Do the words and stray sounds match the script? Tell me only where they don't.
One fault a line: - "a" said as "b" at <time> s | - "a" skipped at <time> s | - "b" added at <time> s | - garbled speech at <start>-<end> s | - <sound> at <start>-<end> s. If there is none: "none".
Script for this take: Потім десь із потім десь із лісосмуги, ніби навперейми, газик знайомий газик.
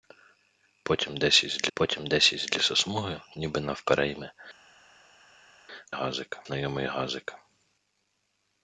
none